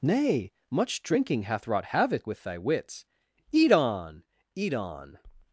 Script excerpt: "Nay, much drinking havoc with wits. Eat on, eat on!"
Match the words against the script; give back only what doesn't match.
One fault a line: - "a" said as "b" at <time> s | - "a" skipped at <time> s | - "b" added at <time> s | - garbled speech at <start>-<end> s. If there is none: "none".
- "hath wrought" added at 1.4 s
- "thy" added at 2.4 s